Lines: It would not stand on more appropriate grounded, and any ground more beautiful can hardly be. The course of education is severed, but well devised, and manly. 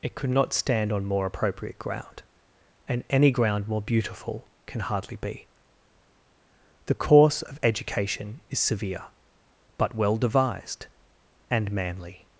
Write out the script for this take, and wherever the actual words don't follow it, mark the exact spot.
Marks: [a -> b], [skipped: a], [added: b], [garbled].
It [would -> could] not stand on more appropriate [grounded, -> ground] and any ground more beautiful can hardly be. The course of education is [severed, -> severe] but well devised, and manly.